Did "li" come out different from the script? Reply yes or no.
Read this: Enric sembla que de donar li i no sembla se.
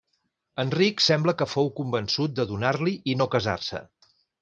no